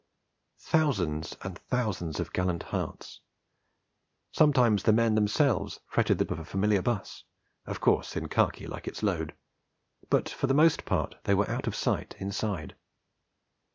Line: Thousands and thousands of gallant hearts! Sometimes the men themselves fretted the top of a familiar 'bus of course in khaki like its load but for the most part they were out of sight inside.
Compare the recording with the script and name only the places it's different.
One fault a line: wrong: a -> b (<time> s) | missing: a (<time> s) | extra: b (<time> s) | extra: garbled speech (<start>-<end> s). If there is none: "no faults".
missing: top (6.2 s)